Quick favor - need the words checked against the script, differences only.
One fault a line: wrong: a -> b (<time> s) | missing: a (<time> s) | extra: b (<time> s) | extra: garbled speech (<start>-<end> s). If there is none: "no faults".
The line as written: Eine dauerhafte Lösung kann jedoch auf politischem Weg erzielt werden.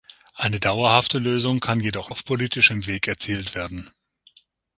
no faults